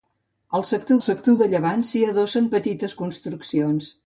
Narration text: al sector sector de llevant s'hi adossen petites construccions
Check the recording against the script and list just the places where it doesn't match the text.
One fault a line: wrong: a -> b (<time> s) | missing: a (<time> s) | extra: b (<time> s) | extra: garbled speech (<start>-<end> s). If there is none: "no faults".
no faults